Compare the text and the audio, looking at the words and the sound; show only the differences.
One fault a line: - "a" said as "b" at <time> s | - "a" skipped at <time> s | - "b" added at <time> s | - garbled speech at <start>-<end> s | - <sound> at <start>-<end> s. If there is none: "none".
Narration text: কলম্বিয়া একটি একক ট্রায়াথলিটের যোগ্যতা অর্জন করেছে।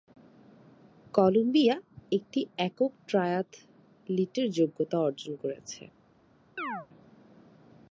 - chirp at 6.6-6.9 s